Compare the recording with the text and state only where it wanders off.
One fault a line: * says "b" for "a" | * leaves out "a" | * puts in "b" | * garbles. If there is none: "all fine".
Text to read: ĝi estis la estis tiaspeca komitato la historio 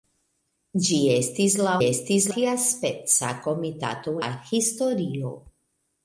all fine